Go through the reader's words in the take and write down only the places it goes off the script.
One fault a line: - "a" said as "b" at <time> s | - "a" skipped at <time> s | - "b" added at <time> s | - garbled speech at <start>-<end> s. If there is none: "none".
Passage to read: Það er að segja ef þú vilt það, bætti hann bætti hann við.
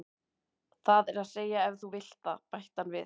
- "bætti hann" skipped at 2.9 s